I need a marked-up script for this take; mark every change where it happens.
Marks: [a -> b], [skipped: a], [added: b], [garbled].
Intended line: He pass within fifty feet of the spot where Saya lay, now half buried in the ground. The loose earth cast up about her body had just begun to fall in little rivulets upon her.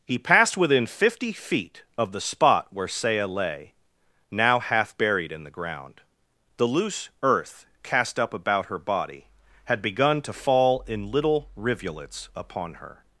He [pass -> passed] within fifty feet of the spot where Saya lay, now half buried in the ground. The loose earth cast up about her body had [skipped: just] begun to fall in little rivulets upon her.